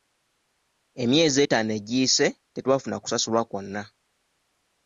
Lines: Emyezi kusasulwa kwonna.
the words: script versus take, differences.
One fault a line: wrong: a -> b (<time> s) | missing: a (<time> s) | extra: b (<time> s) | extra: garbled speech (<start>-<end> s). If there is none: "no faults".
extra: etaano egiyise tetwafuna (1.4 s)